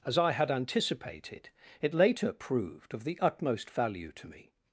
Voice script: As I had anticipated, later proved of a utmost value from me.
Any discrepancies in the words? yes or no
yes